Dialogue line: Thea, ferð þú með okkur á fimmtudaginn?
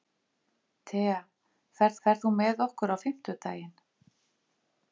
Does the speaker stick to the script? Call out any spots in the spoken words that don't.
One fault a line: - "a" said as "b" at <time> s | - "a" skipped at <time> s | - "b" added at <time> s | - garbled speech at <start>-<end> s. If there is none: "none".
- "ferð" added at 2.1 s